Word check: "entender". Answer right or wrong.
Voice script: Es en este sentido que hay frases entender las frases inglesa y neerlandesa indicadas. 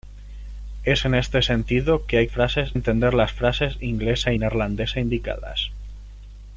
right